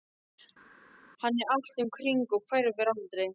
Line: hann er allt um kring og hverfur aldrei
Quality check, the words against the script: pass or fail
pass